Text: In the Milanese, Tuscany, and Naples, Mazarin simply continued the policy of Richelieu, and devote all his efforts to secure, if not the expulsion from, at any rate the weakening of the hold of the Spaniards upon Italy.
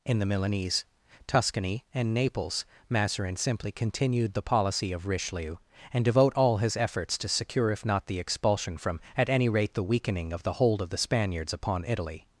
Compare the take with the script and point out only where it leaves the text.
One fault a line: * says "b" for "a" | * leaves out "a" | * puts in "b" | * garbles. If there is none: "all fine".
all fine